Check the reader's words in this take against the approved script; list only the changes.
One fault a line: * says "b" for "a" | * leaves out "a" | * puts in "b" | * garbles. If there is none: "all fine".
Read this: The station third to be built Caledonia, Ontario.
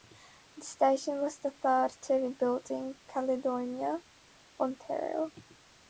* puts in "was the"
* puts in "in"